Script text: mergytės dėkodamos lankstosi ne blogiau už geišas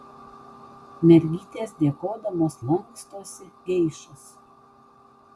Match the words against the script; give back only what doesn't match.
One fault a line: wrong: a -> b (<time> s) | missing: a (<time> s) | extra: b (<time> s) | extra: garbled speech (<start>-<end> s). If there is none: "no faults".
missing: ne blogiau už (3.5 s)